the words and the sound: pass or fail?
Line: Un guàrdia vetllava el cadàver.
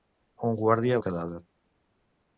fail